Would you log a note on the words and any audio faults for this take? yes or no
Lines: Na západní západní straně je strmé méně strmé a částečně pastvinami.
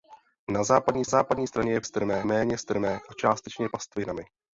no